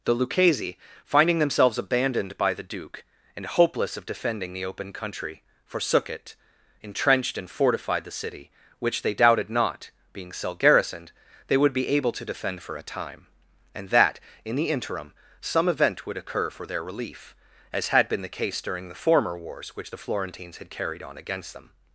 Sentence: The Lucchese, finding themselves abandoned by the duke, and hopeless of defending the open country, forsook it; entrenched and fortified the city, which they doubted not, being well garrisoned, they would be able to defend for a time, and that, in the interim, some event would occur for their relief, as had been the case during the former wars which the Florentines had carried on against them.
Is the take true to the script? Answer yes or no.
no